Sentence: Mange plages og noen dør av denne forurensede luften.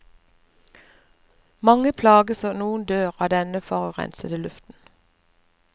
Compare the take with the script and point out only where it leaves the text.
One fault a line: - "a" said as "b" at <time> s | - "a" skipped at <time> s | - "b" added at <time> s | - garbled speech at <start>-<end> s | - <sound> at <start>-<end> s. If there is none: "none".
none